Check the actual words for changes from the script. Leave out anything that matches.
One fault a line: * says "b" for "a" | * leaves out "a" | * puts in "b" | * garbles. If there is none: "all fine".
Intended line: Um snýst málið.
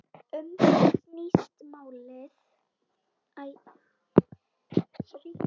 * puts in "það"